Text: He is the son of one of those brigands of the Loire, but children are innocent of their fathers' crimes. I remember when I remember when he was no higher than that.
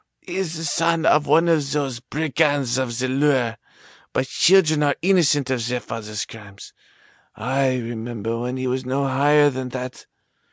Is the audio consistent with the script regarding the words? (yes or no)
no